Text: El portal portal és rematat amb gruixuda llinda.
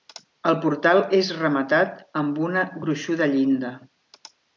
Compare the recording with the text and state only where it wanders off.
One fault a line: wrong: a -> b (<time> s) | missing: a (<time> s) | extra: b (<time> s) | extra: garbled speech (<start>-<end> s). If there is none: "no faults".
missing: portal (1.0 s)
extra: una (2.5 s)